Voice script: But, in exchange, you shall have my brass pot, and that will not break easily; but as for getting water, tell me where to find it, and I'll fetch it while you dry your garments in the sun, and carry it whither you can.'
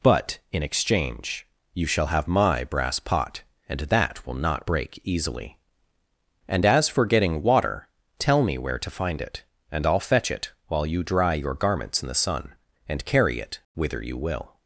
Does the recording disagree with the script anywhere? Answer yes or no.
yes